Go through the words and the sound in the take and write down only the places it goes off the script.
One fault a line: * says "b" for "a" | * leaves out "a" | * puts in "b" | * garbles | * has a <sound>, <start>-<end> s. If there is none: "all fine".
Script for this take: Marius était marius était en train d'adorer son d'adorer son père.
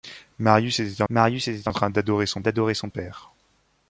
all fine